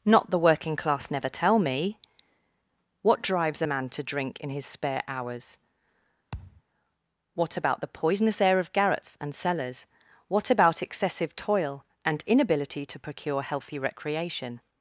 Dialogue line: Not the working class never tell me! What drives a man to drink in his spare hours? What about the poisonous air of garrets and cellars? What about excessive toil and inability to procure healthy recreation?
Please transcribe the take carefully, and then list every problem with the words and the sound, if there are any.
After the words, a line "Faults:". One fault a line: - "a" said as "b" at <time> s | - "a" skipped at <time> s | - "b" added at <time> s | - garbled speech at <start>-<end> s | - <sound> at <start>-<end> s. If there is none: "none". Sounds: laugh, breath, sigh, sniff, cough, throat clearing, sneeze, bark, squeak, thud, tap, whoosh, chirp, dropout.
Not the working class never tell me! What drives a man to drink in his spare hours? What about the poisonous air of garrets and cellars? What about excessive toil and inability to procure healthy recreation?
Faults:
- thud at 6.3-6.6 s